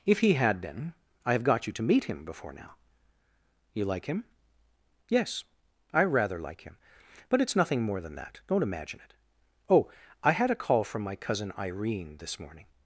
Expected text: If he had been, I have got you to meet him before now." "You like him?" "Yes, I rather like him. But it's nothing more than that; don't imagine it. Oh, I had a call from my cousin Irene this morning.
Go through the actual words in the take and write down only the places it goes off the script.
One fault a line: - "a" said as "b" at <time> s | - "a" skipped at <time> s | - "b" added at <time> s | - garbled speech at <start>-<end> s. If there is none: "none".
none